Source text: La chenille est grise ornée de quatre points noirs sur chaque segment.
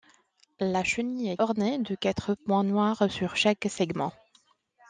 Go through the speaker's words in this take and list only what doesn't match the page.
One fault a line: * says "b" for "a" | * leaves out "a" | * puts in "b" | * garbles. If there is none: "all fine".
* leaves out "grise"